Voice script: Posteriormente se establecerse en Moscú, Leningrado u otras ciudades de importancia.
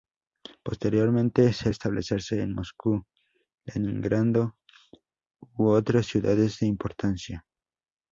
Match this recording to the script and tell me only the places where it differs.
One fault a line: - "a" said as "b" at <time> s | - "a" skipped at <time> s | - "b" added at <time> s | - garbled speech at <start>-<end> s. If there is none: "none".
none